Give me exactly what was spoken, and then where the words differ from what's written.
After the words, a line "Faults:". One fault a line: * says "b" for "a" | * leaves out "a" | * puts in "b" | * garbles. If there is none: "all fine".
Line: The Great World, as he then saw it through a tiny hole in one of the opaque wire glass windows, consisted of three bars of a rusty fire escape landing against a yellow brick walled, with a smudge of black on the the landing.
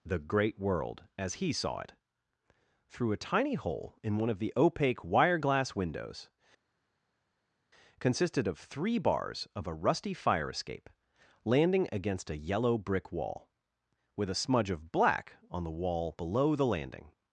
The Great World, as he saw it through a tiny hole in one of the opaque wire glass windows, consisted of three bars of a rusty fire escape landing against a yellow brick wall, with a smudge of black on the wall below the landing.
Faults:
* leaves out "then"
* says "wall" for "walled"
* puts in "wall below"